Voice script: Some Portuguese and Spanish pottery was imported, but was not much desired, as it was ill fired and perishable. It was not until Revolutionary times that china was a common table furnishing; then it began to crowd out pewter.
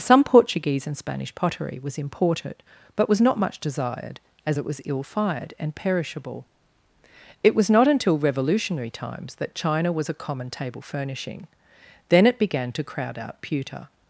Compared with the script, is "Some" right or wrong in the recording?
right